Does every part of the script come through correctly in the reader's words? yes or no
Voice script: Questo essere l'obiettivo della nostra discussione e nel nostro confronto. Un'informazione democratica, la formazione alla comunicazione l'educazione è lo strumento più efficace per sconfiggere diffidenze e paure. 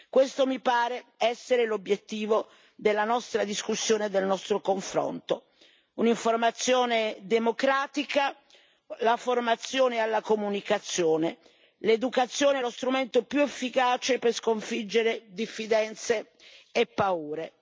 no